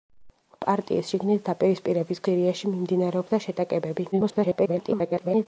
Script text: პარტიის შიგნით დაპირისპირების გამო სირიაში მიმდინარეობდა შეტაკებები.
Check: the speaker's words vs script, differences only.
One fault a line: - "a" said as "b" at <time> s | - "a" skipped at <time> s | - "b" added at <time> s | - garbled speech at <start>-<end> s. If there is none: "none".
- "გამო" skipped at 2.2 s
- garbled speech at 4.1-5.5 s